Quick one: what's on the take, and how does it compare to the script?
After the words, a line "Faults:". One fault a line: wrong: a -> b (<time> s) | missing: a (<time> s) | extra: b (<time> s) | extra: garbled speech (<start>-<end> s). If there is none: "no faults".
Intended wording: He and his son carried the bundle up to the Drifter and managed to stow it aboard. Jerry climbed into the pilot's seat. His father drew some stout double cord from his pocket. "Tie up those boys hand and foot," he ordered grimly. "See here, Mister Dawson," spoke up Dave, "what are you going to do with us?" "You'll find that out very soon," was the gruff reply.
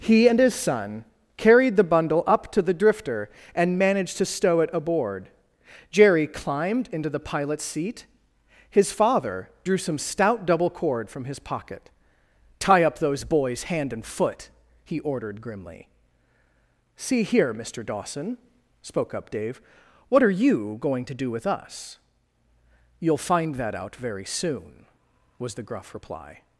He and his son carried the bundle up to the Drifter and managed to stow it aboard. Jerry climbed into the pilot's seat. His father drew some stout double cord from his pocket. "Tie up those boys hand and foot," he ordered grimly. "See here, Mister Dawson," spoke up Dave, "what are you going to do with us?" "You'll find that out very soon," was the gruff reply.
Faults:
no faults